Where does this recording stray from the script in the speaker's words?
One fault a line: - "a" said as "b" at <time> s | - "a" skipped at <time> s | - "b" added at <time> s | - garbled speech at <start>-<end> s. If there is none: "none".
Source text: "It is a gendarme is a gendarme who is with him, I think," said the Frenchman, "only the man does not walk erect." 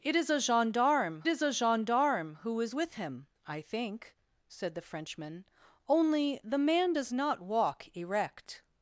none